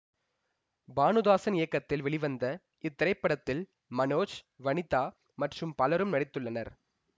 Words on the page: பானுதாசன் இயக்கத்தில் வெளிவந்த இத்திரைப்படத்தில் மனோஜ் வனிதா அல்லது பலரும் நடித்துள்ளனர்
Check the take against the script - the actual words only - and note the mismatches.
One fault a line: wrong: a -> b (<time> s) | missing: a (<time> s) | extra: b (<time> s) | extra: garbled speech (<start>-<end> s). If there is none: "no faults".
wrong: அல்லது -> மற்றும் (5.4 s)